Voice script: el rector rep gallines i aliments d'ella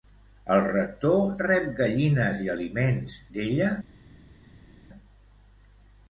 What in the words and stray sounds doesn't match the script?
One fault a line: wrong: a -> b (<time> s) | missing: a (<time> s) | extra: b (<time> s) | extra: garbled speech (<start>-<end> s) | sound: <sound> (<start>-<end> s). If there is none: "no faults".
no faults